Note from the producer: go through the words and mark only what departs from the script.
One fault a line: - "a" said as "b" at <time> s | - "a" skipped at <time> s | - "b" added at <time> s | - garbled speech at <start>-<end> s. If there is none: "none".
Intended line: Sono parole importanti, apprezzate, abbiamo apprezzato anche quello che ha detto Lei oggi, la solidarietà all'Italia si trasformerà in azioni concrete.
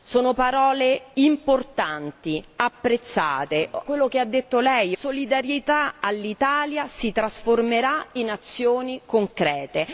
- "abbiamo apprezzato anche" skipped at 3.7 s
- "oggi la" skipped at 4.9 s